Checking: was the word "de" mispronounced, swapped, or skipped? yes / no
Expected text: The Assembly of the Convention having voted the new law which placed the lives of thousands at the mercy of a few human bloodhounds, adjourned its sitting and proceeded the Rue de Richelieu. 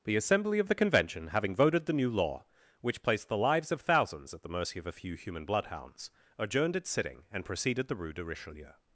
no